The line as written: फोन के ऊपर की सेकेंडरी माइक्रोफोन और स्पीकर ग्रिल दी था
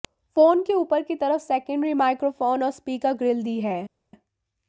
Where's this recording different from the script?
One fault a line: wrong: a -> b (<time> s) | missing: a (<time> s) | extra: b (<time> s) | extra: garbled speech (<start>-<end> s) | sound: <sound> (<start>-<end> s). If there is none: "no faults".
extra: तरफ (1.1 s)
wrong: था -> है (3.6 s)